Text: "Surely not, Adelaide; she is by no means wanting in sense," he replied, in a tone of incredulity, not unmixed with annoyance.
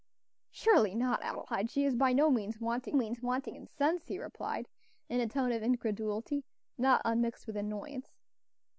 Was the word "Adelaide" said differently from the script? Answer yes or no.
no